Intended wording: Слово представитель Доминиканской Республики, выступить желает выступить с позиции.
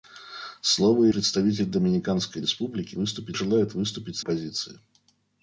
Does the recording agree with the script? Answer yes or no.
yes